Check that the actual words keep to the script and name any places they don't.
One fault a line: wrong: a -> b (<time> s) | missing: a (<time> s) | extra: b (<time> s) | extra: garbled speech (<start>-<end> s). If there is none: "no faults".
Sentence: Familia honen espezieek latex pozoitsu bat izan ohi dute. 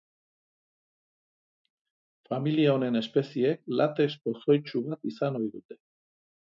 no faults